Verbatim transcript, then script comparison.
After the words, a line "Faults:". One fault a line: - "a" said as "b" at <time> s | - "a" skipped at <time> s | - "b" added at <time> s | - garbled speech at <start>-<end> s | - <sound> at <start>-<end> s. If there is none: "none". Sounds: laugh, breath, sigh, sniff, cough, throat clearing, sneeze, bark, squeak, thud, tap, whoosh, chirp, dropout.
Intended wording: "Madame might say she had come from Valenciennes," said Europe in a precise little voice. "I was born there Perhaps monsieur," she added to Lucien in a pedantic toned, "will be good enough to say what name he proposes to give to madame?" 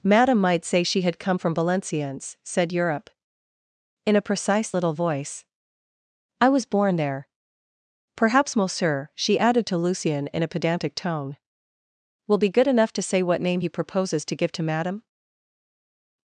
"Madame might say she had come from Valenciennes," said Europe in a precise little voice. "I was born there Perhaps monsieur," she added to Lucien in a pedantic tone, "will be good enough to say what name he proposes to give to madame?"
Faults:
- "toned" said as "tone" at 11.0 s